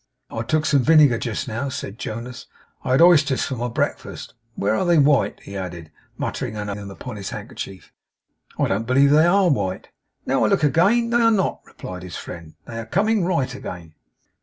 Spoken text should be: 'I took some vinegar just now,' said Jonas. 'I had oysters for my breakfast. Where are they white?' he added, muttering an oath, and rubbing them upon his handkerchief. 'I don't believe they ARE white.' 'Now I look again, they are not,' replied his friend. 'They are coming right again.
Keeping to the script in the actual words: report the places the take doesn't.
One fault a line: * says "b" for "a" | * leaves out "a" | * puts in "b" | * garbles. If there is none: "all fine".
* leaves out "oath and rubbing"